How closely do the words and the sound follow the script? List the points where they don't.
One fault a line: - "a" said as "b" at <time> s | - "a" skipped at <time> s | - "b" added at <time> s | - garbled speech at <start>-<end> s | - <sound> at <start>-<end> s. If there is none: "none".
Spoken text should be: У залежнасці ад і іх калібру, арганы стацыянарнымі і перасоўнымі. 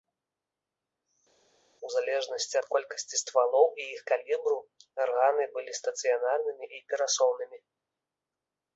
- "колькасці ствалоў" added at 2.7 s
- "былі" added at 5.6 s